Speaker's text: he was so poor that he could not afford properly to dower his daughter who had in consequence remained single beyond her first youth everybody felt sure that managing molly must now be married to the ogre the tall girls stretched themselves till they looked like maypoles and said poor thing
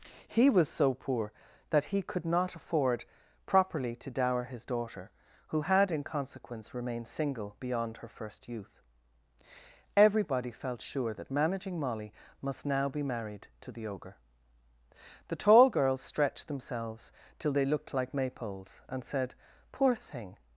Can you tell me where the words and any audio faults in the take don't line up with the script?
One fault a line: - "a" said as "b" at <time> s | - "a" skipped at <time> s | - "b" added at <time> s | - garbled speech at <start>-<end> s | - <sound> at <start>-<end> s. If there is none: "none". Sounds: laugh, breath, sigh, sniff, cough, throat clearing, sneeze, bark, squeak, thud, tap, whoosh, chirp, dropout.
none